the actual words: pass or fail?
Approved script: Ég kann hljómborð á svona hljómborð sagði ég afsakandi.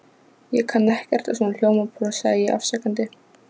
fail